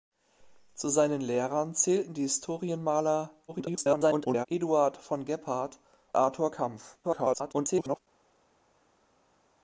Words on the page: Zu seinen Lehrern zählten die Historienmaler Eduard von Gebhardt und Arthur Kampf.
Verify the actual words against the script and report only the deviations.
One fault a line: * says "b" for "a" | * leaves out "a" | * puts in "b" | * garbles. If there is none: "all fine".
* garbles
* leaves out "und"
* garbles